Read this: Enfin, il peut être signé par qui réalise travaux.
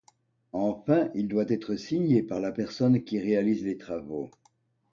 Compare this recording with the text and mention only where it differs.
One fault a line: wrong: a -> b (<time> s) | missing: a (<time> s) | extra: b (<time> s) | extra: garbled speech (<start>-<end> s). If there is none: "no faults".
wrong: peut -> doit (1.3 s)
extra: la personne (2.4 s)
extra: les (3.6 s)